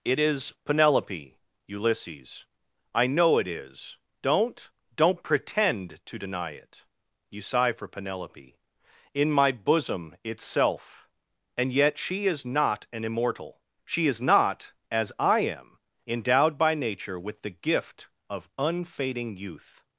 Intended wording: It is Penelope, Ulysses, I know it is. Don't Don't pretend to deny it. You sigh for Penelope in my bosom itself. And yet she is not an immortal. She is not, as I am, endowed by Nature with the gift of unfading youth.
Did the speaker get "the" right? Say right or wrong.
right